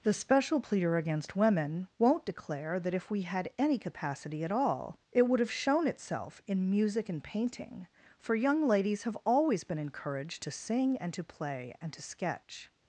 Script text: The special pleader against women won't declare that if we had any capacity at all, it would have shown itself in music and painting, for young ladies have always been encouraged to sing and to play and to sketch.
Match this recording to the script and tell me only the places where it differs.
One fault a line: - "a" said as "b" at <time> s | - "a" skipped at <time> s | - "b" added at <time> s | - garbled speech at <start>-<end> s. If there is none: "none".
none